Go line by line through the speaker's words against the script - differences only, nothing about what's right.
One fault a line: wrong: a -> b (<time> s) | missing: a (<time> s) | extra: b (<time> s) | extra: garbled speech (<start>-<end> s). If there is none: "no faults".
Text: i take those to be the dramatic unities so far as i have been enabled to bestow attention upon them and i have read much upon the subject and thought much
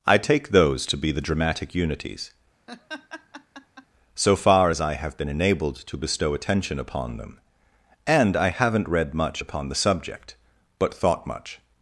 wrong: have -> haven't (8.5 s)
wrong: and -> but (10.8 s)